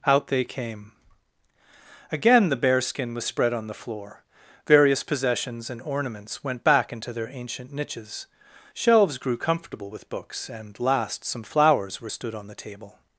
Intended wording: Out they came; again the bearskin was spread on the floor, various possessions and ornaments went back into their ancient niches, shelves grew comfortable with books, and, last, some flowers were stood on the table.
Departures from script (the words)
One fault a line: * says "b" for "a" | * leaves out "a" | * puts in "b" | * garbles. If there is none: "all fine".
all fine